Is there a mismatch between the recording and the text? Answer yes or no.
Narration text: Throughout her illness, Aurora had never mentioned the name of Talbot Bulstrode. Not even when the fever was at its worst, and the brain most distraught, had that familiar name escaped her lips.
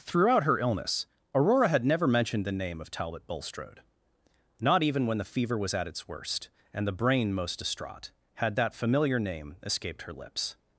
no